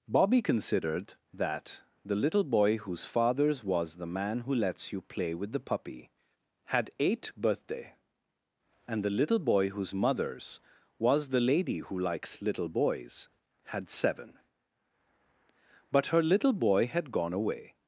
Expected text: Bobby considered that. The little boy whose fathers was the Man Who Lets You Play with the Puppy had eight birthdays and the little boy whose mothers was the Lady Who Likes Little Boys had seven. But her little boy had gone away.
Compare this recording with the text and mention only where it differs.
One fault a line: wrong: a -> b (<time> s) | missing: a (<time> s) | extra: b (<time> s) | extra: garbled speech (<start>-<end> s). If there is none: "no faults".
wrong: birthdays -> birthday (7.3 s)